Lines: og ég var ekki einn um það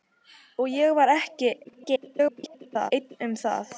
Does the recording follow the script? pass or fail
fail